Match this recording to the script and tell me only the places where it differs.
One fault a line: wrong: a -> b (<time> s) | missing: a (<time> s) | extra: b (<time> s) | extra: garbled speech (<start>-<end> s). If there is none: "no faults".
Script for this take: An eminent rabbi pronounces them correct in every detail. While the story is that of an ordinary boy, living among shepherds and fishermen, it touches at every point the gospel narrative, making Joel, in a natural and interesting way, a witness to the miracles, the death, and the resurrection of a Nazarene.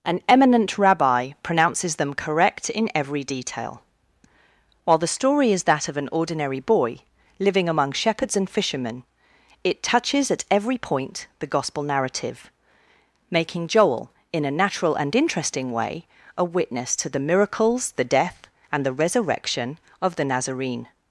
wrong: a -> the (20.1 s)